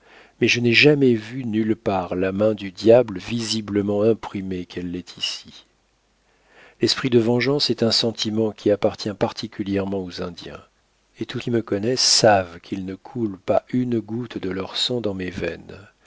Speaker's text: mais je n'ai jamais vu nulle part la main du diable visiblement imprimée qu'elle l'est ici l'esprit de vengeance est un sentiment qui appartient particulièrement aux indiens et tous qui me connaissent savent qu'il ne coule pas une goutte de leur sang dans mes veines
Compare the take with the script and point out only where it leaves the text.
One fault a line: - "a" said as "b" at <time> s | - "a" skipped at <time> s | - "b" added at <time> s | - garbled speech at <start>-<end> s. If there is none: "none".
none